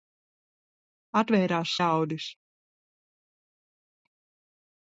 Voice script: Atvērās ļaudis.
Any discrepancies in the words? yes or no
no